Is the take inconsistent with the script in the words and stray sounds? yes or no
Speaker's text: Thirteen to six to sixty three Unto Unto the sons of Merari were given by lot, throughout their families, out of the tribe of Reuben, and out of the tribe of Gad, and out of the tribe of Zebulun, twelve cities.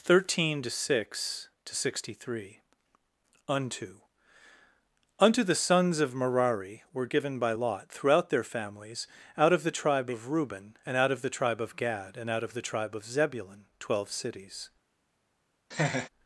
yes